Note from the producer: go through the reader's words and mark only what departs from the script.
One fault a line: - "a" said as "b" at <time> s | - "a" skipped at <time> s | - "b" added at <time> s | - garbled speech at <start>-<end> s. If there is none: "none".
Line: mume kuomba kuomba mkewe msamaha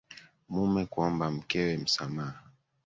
- "kuomba" skipped at 1.3 s